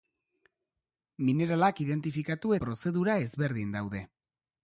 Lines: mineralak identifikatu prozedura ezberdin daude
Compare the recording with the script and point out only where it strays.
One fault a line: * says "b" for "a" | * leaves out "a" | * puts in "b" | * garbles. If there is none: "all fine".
all fine